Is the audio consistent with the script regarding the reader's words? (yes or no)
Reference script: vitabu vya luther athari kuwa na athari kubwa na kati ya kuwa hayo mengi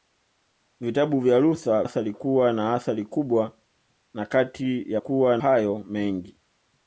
yes